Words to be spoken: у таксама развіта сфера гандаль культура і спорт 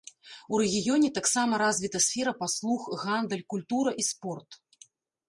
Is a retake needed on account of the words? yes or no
yes